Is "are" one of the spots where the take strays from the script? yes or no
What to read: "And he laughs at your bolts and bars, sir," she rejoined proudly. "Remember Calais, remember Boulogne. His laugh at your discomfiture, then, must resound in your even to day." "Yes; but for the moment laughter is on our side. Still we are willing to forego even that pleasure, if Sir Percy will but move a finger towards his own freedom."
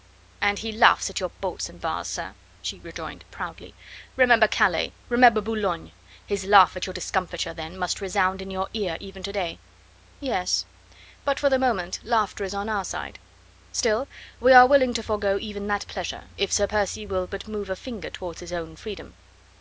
no